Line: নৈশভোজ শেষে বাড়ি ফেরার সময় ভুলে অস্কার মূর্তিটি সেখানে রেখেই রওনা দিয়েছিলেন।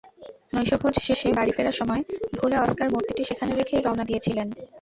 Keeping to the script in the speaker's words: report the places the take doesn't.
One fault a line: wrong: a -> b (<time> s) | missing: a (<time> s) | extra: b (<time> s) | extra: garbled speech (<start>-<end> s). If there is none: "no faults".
no faults